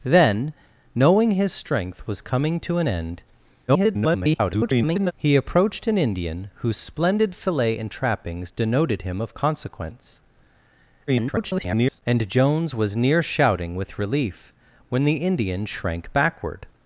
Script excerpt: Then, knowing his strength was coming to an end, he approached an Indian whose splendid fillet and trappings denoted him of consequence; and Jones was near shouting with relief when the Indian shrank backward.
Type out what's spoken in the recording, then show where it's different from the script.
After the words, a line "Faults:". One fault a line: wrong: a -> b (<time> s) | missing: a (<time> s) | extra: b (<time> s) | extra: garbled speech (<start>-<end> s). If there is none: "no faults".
Then, knowing his strength was coming to an end, [garbled] he approached an Indian whose splendid fillet and trappings denoted him of consequence; [garbled] and Jones was near shouting with relief when the Indian shrank backward.
Faults:
extra: garbled speech (3.7-5.1 s)
extra: garbled speech (11.1-12.0 s)